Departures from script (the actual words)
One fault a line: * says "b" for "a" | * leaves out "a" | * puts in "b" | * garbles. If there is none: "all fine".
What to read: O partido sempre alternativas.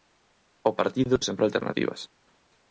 all fine